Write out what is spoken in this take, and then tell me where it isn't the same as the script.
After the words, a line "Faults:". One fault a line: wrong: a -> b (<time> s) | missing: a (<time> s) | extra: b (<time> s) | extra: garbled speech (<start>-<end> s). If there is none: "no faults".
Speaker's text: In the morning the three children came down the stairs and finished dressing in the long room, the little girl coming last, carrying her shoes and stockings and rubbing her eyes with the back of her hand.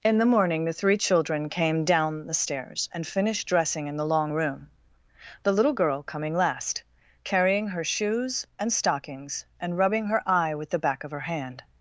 In the morning the three children came down the stairs and finished dressing in the long room, the little girl coming last, carrying her shoes and stockings and rubbing her eye with the back of her hand.
Faults:
wrong: eyes -> eye (10.3 s)